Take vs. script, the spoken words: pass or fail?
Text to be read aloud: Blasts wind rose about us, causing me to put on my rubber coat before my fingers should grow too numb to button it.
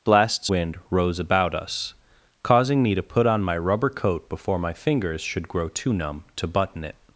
pass